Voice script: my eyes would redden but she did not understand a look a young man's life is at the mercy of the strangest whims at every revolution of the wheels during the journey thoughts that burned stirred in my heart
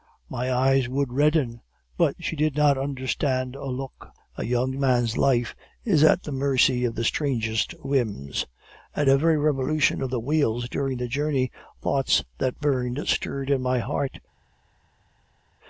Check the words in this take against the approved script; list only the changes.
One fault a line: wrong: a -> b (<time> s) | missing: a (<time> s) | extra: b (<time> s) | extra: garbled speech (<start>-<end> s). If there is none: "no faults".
no faults